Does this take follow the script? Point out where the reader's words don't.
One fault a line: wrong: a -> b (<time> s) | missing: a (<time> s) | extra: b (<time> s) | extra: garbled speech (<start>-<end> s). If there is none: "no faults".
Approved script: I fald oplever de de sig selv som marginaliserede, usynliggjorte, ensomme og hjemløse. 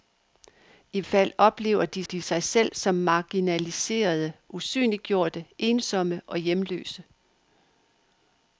no faults